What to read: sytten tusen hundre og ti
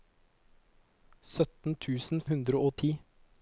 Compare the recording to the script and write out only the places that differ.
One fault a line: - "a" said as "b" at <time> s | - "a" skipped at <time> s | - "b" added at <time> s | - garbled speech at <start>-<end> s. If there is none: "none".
none